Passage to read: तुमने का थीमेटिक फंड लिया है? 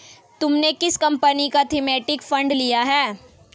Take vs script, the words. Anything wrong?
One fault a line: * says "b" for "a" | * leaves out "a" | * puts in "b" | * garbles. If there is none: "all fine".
* puts in "किस कंपनी"